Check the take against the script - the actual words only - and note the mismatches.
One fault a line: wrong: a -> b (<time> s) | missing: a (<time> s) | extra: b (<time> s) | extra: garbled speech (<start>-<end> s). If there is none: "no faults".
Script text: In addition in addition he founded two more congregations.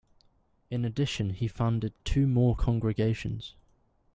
missing: in addition (1.3 s)